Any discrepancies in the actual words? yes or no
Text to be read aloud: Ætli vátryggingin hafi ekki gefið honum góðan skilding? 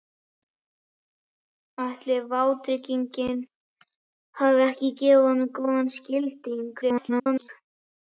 yes